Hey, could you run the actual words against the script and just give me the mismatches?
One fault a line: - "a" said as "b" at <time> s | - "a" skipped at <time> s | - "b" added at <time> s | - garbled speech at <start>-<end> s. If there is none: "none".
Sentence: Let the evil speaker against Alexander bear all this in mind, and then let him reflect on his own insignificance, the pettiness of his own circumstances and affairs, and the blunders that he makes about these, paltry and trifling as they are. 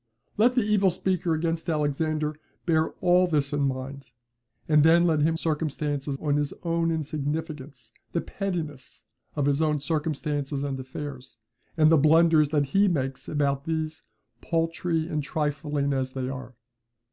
- "reflect" said as "circumstances" at 5.3 s